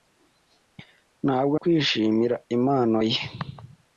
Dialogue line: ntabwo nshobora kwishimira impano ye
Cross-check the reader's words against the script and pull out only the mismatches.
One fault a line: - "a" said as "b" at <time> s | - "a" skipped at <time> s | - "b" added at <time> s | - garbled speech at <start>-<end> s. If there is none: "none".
- "nshobora" skipped at 1.6 s